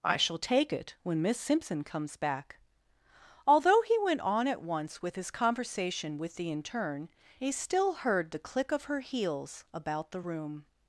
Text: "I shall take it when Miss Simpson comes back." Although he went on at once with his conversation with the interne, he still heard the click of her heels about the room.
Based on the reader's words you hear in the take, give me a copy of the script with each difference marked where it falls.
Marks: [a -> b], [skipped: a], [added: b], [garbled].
"I shall take it when Miss Simpson comes back." Although he went on at once with his conversation with the interne, he still heard the click of her heels about the room.